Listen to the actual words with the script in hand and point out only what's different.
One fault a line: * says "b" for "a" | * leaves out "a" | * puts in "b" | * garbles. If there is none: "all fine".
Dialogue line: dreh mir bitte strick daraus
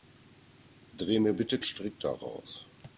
all fine